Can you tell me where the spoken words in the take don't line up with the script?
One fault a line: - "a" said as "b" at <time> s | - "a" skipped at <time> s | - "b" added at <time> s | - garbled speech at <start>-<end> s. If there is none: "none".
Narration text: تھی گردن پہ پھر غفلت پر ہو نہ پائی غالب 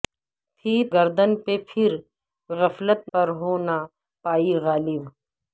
none